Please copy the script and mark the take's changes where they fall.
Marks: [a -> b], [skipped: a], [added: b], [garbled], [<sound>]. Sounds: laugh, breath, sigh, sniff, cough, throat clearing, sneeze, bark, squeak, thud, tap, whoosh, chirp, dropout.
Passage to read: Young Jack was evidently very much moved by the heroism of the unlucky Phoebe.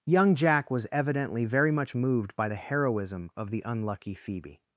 Young Jack was evidently very much moved by the heroism of the unlucky Phoebe.